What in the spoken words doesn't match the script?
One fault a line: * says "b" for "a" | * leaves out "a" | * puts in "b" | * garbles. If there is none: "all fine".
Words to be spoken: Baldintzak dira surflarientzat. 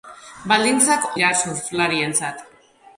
all fine